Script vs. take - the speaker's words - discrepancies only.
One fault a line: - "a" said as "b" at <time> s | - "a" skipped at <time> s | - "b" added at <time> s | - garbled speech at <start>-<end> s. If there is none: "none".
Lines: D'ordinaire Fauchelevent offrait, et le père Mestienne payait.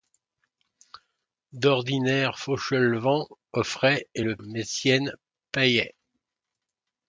- "père" skipped at 4.4 s